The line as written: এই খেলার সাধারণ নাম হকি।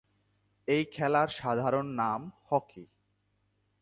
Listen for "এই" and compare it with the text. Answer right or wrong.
right